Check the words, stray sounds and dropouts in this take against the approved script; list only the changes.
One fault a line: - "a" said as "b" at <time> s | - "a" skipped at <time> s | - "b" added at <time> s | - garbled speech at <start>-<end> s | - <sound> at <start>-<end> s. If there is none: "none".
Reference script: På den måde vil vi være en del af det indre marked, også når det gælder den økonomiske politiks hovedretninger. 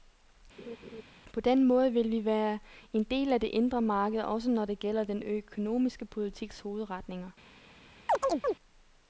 - laugh at 0.6-1.0 s
- chirp at 8.1-8.6 s